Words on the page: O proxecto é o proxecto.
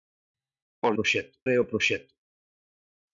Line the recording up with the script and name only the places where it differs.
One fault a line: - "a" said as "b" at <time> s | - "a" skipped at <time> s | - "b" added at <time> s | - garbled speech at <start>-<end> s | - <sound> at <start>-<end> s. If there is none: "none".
none